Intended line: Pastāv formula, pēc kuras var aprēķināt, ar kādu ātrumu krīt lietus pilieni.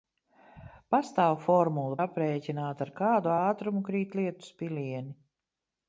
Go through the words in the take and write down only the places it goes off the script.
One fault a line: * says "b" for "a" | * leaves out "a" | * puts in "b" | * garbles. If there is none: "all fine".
* leaves out "pēc kuras var"